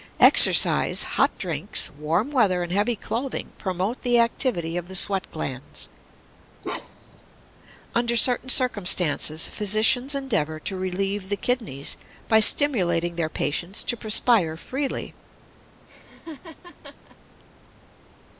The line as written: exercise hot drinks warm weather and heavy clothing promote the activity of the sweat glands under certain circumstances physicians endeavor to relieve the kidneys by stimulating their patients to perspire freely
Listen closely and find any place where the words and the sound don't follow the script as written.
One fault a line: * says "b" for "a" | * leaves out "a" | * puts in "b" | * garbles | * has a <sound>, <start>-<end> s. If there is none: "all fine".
* has a bark, 6.6-7.2 s
* has a laugh, 15.9-17.2 s